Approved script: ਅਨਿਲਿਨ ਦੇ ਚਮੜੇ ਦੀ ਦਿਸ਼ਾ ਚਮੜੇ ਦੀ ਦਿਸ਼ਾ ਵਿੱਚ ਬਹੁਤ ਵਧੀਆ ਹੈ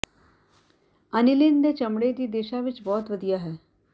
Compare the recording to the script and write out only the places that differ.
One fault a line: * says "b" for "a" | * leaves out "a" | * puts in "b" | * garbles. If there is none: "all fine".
* leaves out "ਚਮੜੇ ਦੀ ਦਿਸ਼ਾ"